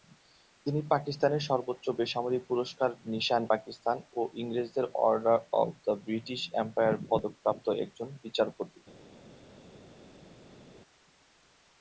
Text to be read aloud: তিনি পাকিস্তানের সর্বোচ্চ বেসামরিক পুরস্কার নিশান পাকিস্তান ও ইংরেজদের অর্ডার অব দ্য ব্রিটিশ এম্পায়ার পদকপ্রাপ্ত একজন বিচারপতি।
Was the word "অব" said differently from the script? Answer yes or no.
no